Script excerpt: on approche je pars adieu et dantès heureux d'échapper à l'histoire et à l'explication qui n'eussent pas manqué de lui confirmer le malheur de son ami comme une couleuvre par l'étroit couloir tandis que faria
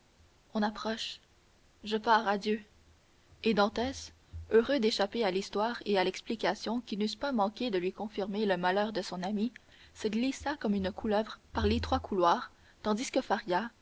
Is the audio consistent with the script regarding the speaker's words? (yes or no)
no